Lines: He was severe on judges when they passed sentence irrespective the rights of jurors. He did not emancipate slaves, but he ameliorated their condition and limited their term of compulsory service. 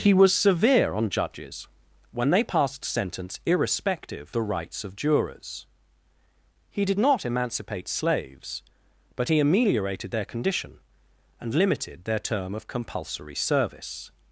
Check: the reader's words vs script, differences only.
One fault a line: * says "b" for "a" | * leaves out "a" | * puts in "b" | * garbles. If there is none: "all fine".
all fine